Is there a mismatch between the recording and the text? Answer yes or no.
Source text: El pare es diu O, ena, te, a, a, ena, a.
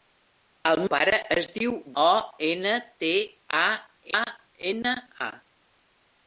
no